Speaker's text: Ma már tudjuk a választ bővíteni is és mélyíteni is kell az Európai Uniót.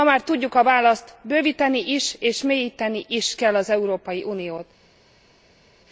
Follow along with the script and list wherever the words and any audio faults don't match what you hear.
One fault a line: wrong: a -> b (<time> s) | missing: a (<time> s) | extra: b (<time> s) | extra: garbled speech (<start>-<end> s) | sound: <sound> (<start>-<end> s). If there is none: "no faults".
no faults